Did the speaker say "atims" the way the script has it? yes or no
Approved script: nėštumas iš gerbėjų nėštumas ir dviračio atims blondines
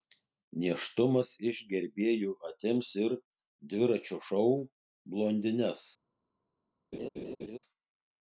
no